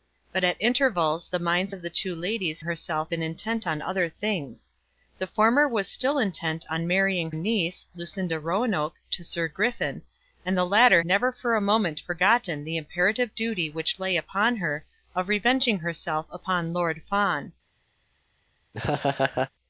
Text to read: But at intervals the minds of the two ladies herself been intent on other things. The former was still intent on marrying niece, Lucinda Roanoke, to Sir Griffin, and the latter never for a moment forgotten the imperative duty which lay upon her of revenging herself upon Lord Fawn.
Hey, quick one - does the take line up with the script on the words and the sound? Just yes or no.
no